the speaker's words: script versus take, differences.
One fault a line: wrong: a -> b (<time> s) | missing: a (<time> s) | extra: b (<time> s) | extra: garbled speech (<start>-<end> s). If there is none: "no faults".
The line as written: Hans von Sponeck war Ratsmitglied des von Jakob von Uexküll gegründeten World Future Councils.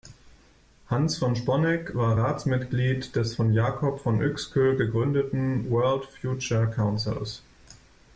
no faults